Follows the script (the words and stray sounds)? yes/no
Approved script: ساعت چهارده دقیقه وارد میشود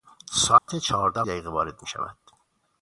no